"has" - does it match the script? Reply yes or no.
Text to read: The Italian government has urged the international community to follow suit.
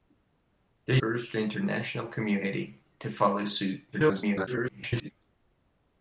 no